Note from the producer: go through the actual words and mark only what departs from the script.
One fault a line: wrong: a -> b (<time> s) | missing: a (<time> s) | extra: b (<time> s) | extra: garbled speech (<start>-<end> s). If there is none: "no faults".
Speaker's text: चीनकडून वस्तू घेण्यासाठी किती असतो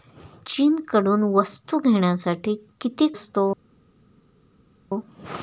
no faults